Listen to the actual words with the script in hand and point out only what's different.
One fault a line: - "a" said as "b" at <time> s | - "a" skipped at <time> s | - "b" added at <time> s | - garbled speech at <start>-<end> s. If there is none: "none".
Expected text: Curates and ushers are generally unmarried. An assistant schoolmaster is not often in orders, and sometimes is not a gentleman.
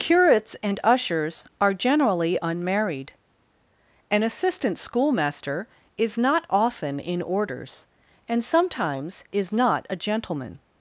none